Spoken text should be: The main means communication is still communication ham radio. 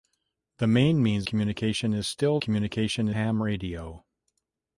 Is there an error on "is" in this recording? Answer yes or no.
no